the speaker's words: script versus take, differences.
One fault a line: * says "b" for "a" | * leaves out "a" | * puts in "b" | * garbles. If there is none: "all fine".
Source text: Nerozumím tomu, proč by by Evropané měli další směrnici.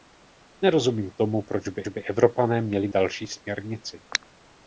all fine